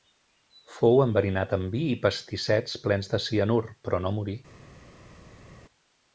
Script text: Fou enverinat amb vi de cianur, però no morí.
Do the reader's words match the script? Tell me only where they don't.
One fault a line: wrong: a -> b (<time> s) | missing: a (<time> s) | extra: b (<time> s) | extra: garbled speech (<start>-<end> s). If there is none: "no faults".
extra: i pastissets plens (1.9 s)